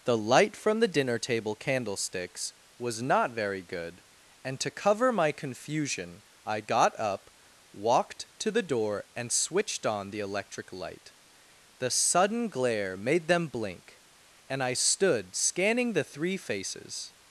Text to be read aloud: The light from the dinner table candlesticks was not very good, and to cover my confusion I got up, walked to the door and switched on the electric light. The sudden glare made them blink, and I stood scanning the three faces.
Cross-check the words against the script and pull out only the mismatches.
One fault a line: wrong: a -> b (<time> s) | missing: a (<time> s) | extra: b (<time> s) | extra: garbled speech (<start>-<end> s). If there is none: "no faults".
no faults